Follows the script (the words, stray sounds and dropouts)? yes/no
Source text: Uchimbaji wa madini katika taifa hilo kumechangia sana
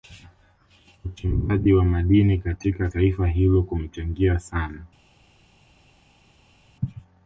yes